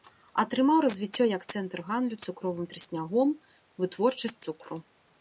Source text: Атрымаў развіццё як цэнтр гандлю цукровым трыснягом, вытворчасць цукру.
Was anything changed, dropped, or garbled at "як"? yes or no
no